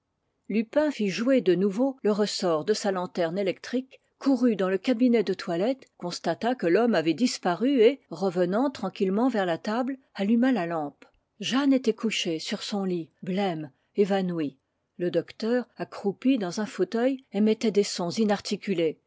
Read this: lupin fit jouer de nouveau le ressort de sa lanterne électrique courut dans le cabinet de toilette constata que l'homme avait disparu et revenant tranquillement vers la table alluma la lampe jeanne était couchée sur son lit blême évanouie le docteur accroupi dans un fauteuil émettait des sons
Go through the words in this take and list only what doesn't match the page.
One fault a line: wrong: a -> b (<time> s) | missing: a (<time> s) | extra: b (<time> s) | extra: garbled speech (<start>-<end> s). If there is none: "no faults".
no faults